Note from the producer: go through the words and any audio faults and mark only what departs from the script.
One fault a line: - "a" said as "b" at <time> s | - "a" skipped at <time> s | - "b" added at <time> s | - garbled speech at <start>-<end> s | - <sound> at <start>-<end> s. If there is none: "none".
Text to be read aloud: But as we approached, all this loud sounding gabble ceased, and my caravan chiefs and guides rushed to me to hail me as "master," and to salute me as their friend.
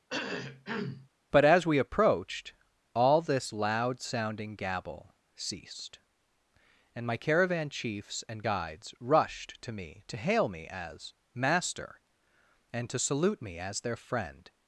- cough at 0.1-1.1 s